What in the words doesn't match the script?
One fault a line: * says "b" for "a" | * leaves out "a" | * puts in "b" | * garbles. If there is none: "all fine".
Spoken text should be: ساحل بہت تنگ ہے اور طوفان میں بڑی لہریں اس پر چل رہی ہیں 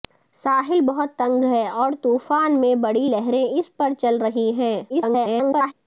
* garbles